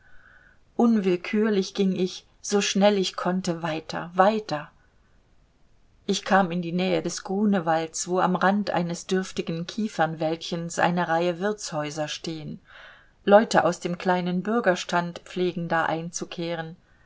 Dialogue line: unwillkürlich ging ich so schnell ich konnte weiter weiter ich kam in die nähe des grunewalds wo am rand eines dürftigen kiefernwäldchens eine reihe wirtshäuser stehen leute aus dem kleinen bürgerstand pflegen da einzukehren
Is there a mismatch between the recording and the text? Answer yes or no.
no